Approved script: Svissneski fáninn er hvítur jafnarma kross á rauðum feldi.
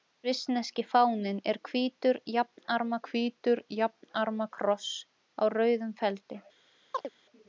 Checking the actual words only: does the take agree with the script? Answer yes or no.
no